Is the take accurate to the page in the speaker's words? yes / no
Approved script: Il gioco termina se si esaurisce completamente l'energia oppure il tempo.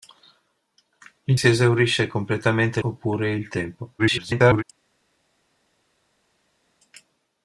no